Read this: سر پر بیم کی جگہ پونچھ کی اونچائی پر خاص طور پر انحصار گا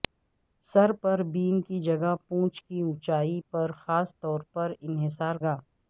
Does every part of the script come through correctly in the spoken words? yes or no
yes